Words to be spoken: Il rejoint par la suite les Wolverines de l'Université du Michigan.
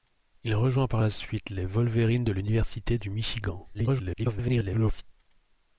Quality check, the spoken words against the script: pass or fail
fail